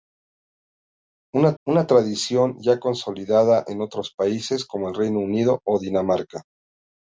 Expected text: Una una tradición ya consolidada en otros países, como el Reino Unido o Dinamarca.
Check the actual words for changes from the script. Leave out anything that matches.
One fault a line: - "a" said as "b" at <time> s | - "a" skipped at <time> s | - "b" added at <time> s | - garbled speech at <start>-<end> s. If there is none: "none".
none